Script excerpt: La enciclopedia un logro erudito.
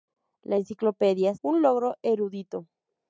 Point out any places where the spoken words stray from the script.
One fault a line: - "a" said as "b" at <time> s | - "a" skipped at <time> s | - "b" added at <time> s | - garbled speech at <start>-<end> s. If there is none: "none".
none